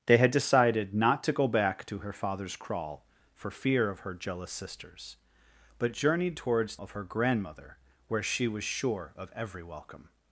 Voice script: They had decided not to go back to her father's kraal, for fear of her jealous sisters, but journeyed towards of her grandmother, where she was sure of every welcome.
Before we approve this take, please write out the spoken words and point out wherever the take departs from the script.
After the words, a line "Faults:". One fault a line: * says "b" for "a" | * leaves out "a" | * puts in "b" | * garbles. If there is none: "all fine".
They had decided not to go back to her father's kraal, for fear of her jealous sisters, but journeyed towards of her grandmother, where she was sure of every welcome.
Faults:
all fine